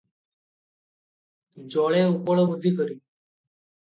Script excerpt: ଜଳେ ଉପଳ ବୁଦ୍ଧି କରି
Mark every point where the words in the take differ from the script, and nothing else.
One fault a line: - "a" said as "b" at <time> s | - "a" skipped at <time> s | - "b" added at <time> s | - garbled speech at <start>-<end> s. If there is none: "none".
none